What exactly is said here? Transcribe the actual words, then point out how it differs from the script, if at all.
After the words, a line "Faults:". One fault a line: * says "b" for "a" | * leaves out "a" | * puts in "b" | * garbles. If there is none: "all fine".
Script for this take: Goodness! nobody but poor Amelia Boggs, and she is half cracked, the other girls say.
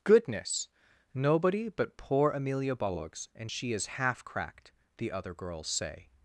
Goodness! nobody but poor Amelia Boggs, and she is half cracked, the other girls say.
Faults:
all fine